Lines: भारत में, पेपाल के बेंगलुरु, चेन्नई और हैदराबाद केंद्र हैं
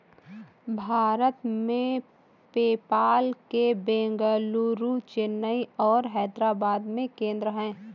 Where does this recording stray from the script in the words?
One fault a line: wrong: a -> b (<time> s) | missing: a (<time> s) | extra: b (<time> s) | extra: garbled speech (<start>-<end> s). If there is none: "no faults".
extra: में (6.9 s)